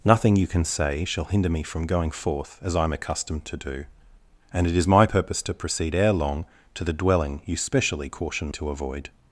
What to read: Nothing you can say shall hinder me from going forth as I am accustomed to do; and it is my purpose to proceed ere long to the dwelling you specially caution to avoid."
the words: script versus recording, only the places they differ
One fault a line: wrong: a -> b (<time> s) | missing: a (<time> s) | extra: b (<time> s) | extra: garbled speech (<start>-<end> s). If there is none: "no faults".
no faults